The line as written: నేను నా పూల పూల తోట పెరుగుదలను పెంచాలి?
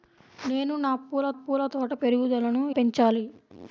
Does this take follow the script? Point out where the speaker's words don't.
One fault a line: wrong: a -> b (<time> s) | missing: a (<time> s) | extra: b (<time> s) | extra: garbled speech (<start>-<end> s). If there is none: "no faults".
no faults